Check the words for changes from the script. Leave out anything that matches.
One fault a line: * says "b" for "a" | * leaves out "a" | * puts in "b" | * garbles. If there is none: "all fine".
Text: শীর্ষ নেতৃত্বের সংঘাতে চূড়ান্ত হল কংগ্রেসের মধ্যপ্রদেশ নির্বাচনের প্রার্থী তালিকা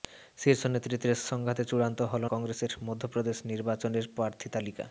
all fine